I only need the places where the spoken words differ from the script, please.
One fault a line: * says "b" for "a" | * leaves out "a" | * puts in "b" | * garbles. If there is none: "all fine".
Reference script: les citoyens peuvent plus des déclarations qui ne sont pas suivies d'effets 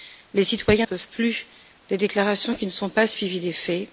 all fine